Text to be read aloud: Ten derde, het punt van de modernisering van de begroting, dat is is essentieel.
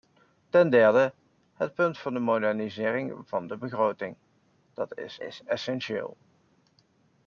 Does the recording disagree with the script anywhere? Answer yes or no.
no